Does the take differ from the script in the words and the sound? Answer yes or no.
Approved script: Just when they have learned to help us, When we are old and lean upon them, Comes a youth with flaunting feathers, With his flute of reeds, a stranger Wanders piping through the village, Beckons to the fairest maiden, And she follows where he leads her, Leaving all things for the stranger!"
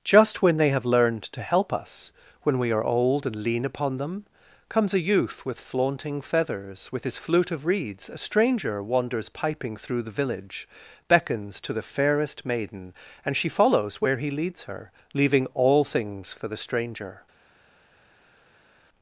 no